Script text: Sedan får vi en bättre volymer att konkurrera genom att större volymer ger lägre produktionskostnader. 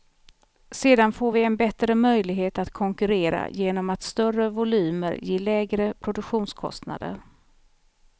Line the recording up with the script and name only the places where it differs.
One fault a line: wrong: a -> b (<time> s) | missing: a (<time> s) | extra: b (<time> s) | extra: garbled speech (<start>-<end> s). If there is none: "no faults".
wrong: volymer -> möjlighet (1.9 s)